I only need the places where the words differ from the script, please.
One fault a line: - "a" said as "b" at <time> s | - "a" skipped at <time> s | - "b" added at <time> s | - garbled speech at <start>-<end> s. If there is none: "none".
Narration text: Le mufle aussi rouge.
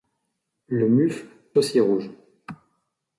none